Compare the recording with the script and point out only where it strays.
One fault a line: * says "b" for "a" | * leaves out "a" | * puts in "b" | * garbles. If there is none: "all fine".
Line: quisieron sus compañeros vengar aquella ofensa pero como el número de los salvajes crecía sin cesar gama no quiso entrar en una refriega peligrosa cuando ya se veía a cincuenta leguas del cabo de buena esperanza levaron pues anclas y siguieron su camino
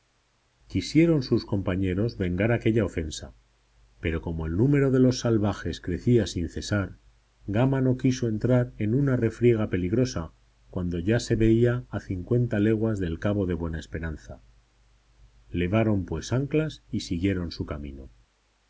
all fine